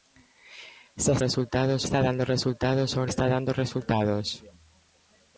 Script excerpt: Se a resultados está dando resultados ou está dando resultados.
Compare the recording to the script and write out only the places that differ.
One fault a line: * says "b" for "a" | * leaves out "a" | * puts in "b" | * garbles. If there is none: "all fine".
all fine